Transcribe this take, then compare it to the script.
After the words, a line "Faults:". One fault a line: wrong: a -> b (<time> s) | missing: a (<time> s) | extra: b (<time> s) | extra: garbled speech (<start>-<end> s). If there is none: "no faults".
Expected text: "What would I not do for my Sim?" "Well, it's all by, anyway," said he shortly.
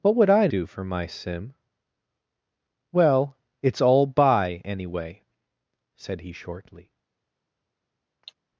"What would I do for my Sim?" "Well, it's all by, anyway," said he shortly.
Faults:
missing: not (0.5 s)